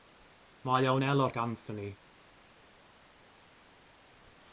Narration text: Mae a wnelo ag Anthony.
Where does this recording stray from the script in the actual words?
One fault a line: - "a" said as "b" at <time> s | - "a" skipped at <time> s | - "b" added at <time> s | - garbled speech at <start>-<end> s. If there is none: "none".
none